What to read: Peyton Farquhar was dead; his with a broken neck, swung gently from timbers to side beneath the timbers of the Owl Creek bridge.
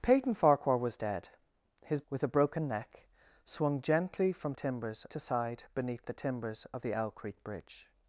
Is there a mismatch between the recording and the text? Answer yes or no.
no